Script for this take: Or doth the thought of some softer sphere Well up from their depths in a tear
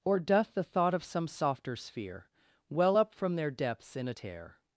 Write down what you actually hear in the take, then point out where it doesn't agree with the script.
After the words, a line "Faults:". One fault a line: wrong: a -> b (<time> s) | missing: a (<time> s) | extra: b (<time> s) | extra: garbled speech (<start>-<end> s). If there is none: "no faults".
Or doth the thought of some softer sphere Well up from their depths in a tear
Faults:
no faults